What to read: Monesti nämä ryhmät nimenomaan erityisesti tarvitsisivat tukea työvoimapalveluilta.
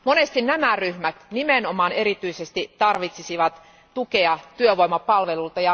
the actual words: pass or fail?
pass